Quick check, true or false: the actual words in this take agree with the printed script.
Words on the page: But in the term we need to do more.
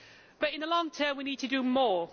false